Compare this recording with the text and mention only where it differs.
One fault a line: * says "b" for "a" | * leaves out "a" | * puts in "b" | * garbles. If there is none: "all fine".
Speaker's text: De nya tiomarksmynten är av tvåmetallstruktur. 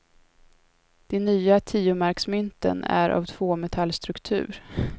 all fine